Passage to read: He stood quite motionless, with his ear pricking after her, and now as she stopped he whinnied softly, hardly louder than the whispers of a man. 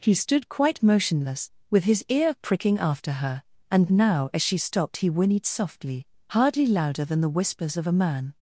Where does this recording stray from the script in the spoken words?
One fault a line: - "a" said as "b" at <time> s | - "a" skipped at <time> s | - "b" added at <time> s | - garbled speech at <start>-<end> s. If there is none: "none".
none